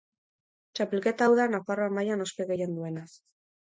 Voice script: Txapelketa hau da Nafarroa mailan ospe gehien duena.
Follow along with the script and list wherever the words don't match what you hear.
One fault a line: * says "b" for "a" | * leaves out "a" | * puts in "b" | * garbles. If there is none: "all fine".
all fine